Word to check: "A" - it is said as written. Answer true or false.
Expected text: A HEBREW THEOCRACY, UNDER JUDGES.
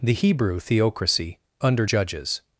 false